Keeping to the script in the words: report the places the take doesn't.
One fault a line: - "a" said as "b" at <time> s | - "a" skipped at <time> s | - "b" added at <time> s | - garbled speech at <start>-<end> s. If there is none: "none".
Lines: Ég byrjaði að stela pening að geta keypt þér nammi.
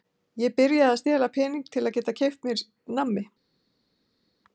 - "til" added at 1.7 s
- "þér" said as "mér" at 2.5 s